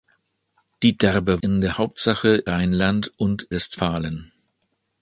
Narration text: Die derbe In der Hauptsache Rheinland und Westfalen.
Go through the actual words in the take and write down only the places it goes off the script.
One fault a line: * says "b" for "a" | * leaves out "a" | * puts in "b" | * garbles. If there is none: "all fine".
all fine